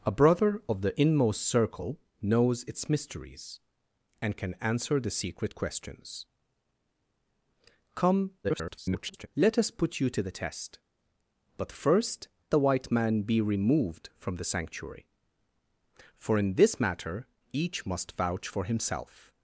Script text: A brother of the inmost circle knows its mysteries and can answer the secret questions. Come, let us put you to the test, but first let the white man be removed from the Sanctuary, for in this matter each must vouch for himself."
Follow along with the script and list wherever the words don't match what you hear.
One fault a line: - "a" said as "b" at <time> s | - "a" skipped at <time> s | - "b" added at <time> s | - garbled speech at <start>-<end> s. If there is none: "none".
- garbled speech at 8.4-9.3 s
- "let" skipped at 12.3 s